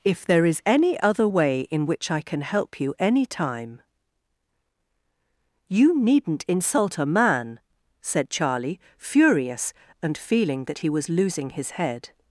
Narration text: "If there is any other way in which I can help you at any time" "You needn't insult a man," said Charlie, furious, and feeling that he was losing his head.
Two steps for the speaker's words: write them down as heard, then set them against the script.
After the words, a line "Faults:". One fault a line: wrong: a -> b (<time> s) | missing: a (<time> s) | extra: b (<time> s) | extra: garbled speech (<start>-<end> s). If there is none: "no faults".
"If there is any other way in which I can help you any time" "You needn't insult a man," said Charlie, furious, and feeling that he was losing his head.
Faults:
missing: at (2.9 s)